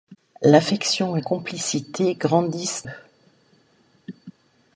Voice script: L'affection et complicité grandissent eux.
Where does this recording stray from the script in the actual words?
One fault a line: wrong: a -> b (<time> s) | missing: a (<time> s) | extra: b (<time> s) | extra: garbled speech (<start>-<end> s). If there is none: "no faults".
no faults